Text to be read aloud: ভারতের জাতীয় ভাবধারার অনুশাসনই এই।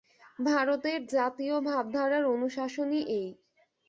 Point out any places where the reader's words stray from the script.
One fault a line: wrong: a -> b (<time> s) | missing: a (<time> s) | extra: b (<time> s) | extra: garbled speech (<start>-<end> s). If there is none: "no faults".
no faults